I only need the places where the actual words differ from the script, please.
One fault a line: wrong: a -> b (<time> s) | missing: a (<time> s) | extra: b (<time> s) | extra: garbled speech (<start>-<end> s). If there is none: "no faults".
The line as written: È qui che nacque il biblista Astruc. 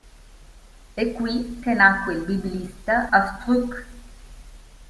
no faults